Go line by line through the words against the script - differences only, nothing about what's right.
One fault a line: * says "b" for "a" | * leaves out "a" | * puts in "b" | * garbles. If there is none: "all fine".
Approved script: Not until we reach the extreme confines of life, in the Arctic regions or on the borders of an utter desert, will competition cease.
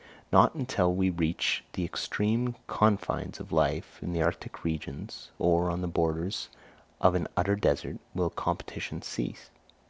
all fine